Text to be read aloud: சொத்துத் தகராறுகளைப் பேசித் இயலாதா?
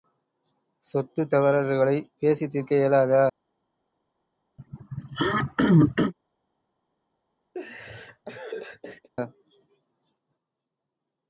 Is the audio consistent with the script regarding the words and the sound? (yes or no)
no